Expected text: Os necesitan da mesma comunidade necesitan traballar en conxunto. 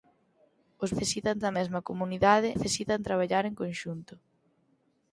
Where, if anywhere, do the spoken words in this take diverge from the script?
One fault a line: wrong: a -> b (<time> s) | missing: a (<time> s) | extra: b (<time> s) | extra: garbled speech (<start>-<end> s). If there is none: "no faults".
no faults